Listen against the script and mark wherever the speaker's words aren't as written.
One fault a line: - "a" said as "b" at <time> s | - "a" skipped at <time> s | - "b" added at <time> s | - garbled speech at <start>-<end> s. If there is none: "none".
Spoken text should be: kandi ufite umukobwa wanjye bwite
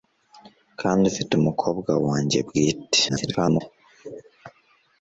- garbled speech at 3.1-3.6 s